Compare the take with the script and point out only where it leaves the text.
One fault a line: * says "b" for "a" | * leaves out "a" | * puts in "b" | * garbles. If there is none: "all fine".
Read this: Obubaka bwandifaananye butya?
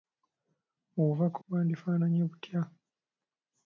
all fine